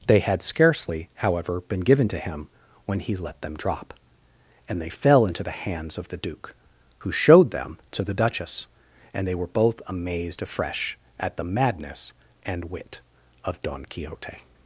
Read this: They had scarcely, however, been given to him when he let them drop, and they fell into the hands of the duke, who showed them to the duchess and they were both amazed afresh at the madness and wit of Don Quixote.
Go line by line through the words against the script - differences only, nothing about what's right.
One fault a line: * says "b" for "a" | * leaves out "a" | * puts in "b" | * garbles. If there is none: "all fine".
all fine